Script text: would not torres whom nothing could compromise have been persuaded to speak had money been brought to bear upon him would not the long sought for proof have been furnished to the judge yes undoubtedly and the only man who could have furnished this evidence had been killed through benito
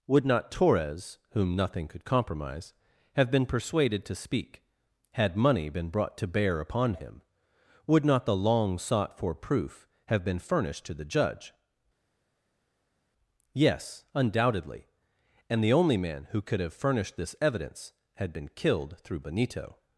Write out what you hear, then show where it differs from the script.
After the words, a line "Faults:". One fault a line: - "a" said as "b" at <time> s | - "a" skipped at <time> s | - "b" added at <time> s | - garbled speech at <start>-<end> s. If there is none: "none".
would not torres whom nothing could compromise have been persuaded to speak had money been brought to bear upon him would not the long sought for proof have been furnished to the judge yes undoubtedly and the only man who could have furnished this evidence had been killed through benito
Faults:
none